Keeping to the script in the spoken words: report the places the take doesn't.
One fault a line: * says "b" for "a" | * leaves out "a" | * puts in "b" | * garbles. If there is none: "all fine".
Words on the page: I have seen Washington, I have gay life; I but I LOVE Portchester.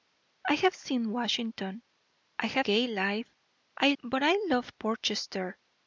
all fine